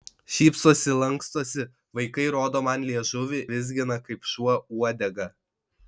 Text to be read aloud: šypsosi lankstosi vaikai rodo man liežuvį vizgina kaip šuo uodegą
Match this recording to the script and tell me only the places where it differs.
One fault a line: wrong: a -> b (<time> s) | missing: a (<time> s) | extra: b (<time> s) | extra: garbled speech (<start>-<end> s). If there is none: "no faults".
no faults